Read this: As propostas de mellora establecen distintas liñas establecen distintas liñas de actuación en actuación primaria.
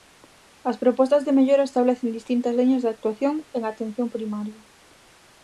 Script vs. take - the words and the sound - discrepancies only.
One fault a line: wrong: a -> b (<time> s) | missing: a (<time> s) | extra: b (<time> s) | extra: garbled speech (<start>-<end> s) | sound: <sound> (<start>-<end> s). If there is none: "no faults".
missing: establecen distintas liñas (2.8 s)
wrong: actuación -> atención (3.7 s)